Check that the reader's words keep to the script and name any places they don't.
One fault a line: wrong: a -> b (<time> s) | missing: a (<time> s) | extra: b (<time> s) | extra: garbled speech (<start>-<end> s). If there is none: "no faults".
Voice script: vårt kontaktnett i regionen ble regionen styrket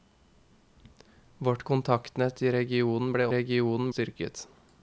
no faults